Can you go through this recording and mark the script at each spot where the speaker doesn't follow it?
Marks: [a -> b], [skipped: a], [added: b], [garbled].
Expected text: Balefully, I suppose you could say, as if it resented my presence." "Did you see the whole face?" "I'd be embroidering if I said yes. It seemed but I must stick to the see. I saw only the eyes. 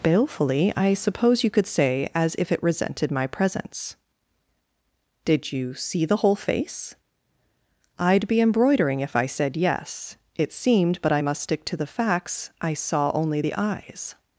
Balefully, I suppose you could say, as if it resented my presence." "Did you see the whole face?" "I'd be embroidering if I said yes. It seemed but I must stick to the [see. -> facts] I saw only the eyes.